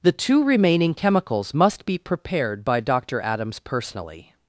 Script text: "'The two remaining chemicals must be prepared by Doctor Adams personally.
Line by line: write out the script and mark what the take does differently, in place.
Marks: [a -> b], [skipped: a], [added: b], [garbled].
"'The two remaining chemicals must be prepared by Doctor Adams personally.